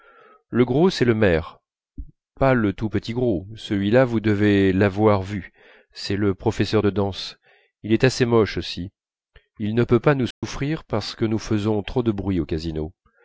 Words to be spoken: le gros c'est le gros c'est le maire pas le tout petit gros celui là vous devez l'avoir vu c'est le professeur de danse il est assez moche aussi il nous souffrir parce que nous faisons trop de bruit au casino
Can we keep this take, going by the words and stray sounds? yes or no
no